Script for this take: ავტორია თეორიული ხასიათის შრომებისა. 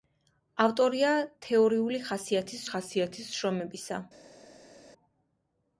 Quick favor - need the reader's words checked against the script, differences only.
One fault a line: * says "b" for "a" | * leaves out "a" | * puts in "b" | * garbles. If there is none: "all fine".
* puts in "ხასიათის"